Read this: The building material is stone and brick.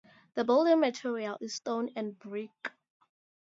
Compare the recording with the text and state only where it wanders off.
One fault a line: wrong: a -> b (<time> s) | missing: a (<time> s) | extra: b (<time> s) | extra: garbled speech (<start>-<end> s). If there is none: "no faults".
no faults